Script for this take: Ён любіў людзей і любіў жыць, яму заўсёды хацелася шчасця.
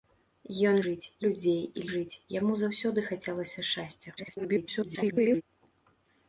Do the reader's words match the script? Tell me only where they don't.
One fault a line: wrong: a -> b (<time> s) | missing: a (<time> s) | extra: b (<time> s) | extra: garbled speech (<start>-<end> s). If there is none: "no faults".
wrong: любіў -> жыць (0.8 s)
missing: любіў (1.8 s)
extra: garbled speech (4.2-5.4 s)